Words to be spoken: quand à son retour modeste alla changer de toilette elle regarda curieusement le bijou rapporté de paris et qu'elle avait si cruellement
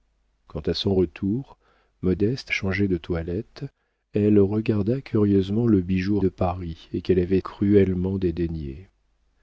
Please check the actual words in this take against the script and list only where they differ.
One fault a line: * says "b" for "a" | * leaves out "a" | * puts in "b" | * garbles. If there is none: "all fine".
* leaves out "alla"
* leaves out "rapporté"
* leaves out "si"